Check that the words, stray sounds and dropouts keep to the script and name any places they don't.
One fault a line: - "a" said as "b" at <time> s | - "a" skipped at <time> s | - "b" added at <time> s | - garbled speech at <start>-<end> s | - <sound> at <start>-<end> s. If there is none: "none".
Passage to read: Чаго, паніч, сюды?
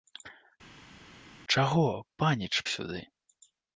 none